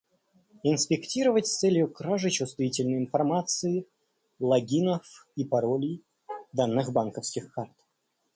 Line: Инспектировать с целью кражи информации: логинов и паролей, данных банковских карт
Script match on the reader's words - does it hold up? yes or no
no